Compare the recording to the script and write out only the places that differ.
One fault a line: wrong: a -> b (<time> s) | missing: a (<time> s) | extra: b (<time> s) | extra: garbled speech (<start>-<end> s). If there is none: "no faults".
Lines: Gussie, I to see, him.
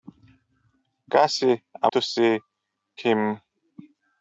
no faults